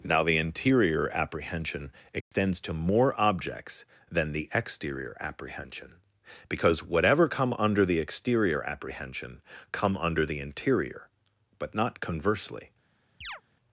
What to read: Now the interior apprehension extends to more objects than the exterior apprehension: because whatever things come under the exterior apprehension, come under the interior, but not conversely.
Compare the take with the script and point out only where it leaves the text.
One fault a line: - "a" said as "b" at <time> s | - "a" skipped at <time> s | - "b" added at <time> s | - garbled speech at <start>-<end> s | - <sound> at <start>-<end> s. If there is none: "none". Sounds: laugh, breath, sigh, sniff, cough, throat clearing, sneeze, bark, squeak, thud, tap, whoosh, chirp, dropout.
- dropout at 2.2-2.3 s
- "things" skipped at 7.3 s
- chirp at 13.2-13.4 s